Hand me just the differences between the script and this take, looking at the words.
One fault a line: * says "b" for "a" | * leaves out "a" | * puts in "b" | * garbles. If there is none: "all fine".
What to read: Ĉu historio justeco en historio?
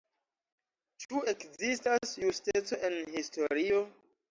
* says "ekzistas" for "historio"